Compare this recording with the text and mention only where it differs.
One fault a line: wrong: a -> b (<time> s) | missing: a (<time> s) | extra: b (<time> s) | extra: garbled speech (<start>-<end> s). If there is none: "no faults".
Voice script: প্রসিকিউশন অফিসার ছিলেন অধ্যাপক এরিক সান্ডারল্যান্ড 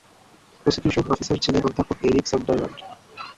no faults